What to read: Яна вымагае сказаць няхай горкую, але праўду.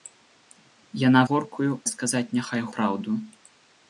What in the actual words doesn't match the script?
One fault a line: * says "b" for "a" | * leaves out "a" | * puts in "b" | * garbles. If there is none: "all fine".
* says "горкую" for "вымагае"
* leaves out "горкую але"